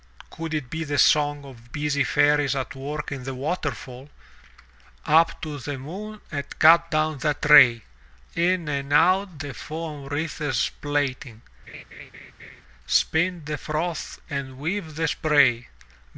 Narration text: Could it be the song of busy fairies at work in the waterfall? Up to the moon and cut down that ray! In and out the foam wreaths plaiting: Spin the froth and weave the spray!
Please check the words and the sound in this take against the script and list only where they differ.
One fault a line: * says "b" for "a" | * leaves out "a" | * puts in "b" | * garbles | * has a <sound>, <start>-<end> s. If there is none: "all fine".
* has a laugh, 11.7-12.6 s